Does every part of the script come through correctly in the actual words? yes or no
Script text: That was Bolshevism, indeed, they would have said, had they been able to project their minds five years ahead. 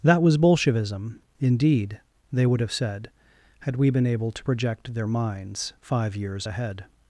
no